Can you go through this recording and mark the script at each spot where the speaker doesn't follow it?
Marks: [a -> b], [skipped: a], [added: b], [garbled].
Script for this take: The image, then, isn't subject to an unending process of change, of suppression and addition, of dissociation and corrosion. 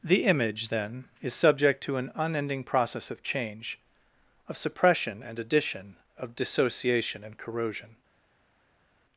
The image, then, [isn't -> is] subject to an unending process of change, of suppression and addition, of dissociation and corrosion.